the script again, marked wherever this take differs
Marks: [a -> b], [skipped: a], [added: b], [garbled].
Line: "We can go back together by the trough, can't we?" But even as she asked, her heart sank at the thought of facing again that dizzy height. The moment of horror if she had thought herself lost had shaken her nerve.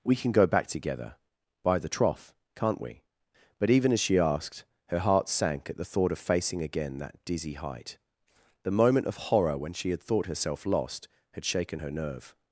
"We can go back together by the trough, can't we?" But even as she asked, her heart sank at the thought of facing again that dizzy height. The moment of horror [if -> when] she had thought herself lost had shaken her nerve.